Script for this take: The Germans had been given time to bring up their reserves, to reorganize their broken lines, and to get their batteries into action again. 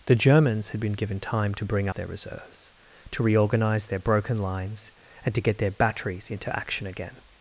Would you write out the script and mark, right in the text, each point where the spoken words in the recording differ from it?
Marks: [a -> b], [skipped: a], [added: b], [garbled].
The Germans had been given time to bring [skipped: up] their reserves, to reorganize their broken lines, and to get their batteries into action again.